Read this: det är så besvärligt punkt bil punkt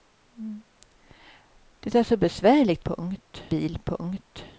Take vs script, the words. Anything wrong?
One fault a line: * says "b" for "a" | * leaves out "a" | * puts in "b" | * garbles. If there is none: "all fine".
all fine